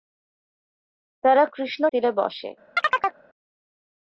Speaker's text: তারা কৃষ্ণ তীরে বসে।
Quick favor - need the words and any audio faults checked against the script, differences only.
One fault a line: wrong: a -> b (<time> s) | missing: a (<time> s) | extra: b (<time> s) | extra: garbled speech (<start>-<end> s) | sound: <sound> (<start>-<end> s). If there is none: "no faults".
sound: chirp (2.8-3.2 s)